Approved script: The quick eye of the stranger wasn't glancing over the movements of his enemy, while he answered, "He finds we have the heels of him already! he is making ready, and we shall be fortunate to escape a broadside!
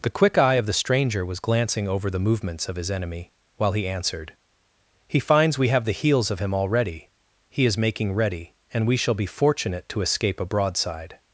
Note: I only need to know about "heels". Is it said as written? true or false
true